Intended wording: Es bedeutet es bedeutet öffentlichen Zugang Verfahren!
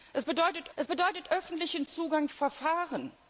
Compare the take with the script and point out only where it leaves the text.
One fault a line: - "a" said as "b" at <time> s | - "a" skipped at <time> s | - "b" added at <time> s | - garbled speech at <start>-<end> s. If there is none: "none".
none